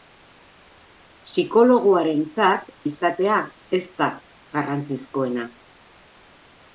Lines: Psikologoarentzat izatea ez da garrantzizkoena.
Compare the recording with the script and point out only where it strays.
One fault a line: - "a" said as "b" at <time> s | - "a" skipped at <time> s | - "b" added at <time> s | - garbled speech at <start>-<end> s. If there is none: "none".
none